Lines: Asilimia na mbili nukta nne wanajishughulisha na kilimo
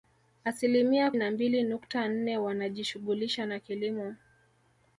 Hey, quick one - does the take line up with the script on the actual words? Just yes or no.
yes